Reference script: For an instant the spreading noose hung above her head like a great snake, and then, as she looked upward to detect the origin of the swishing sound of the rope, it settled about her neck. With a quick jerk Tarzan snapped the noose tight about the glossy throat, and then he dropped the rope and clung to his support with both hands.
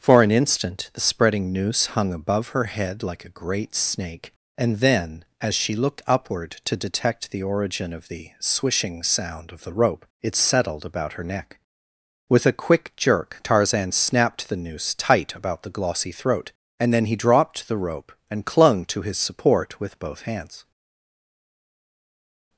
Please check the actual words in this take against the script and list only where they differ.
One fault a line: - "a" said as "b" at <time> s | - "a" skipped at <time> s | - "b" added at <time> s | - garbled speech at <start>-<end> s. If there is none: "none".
none